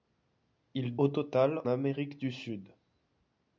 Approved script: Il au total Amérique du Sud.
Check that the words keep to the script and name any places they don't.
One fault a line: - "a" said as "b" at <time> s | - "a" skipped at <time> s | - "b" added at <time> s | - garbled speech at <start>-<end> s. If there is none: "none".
none